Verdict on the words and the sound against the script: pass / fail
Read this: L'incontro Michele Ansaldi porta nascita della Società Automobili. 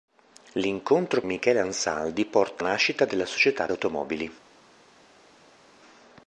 pass